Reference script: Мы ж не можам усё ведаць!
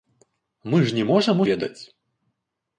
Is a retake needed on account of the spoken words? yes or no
yes